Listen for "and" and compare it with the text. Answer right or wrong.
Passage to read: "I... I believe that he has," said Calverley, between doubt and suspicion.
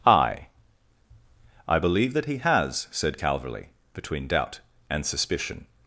right